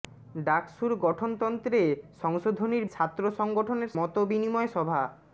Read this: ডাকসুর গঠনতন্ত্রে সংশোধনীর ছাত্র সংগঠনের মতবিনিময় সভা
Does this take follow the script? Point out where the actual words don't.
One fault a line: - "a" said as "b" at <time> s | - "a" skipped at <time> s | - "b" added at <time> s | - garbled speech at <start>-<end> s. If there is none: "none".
none